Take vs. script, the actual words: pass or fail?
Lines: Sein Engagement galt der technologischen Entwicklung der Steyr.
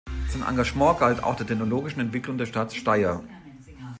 fail